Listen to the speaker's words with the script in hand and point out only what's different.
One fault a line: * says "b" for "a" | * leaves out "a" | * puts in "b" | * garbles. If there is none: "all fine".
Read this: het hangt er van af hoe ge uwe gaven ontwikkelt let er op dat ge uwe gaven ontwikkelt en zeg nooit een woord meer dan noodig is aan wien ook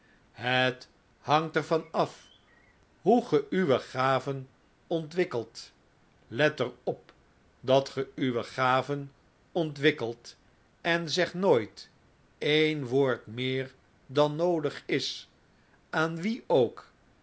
all fine